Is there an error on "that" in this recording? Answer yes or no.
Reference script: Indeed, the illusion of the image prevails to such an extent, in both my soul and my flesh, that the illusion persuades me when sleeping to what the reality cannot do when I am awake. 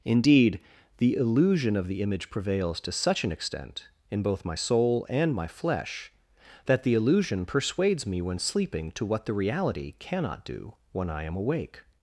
no